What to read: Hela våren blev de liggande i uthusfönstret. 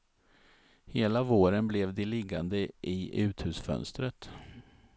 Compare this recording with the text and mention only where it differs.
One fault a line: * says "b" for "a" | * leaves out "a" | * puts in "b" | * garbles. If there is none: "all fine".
all fine